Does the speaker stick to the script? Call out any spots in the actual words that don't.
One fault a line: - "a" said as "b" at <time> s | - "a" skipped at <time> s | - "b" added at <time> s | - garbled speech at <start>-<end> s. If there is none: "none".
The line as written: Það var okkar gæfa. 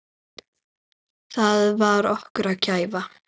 none